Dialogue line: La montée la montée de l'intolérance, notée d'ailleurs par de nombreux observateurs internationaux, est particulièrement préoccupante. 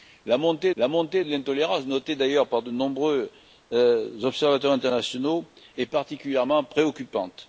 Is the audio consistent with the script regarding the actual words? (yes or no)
yes